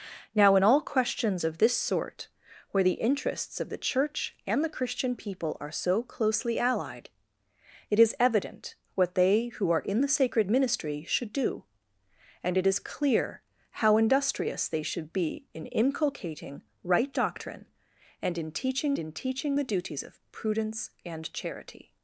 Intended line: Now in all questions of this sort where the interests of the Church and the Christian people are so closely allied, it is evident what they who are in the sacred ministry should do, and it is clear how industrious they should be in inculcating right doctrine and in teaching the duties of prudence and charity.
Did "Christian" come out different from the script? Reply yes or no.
no